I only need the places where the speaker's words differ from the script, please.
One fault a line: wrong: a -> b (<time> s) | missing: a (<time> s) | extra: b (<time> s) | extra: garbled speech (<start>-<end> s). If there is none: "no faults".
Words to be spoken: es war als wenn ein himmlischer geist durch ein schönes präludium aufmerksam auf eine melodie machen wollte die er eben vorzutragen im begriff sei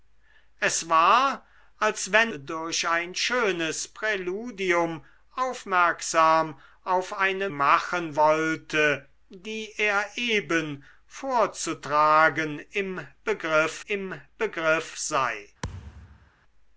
missing: ein himmlischer geist (2.3 s)
missing: melodie (7.5 s)
extra: im begriff (13.9 s)